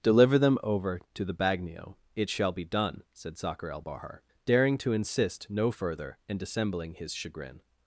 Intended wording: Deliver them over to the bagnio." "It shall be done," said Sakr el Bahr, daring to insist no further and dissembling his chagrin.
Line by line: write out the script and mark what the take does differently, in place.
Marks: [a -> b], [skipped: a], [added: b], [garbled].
Deliver them over to the bagnio." "It shall be done," said Sakr el Bahr, daring to insist no further and dissembling his chagrin.